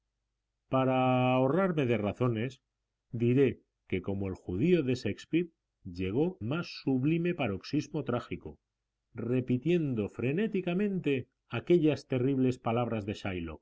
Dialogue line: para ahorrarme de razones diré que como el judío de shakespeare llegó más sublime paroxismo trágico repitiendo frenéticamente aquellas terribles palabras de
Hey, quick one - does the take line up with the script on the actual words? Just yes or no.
yes